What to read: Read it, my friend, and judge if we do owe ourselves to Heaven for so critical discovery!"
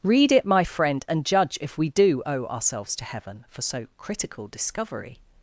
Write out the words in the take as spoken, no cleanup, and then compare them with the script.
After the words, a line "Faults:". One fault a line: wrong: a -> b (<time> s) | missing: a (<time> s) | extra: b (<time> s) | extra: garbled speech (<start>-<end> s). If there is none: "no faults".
Read it, my friend, and judge if we do owe ourselves to Heaven for so critical discovery!"
Faults:
no faults